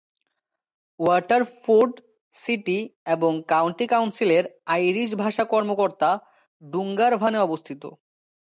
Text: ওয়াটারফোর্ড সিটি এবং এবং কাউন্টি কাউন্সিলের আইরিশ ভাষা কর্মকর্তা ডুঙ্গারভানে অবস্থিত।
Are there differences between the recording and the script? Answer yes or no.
yes